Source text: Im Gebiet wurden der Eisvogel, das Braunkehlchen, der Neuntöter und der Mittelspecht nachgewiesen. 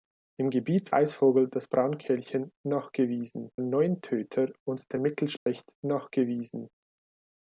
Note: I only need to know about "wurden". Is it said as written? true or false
false